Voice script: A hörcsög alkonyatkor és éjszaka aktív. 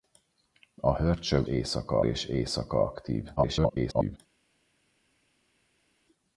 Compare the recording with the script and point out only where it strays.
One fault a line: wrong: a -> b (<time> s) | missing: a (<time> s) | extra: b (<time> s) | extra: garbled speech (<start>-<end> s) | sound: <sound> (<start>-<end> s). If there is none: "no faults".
wrong: alkonyatkor -> éjszaka (1.4 s)
extra: garbled speech (3.4-4.2 s)